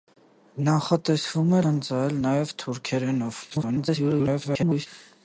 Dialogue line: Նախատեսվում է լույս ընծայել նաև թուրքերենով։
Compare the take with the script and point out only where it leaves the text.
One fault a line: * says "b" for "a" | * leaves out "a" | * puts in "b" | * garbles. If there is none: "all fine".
* leaves out "լույս"
* garbles